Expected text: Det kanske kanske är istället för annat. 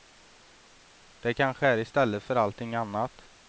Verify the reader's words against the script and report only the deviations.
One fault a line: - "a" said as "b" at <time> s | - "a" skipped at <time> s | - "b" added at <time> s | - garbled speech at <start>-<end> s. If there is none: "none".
- "kanske" skipped at 1.7 s
- "allting" added at 2.4 s